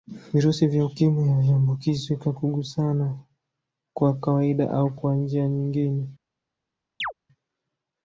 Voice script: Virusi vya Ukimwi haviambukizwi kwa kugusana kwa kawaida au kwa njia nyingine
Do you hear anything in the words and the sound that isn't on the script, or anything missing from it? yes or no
yes